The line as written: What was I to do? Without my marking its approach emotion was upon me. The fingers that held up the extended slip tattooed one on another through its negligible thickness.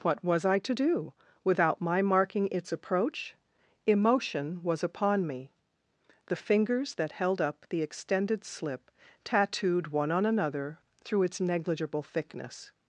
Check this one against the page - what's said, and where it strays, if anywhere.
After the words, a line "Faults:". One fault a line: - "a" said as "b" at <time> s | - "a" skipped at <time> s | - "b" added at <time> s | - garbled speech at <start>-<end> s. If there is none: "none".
What was I to do? Without my marking its approach emotion was upon me. The fingers that held up the extended slip tattooed one on another through its negligible thickness.
Faults:
none